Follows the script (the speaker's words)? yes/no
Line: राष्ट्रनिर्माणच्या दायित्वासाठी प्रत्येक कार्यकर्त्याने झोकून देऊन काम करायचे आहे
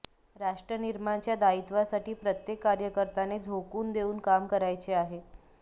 yes